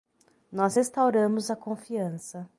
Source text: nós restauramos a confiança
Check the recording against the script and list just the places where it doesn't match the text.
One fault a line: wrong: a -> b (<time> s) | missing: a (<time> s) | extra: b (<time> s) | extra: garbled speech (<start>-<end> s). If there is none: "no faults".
no faults